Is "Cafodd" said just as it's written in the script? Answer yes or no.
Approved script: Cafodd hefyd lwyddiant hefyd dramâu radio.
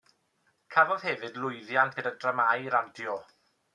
yes